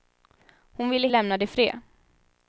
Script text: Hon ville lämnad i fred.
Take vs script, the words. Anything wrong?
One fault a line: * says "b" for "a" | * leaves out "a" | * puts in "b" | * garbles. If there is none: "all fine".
all fine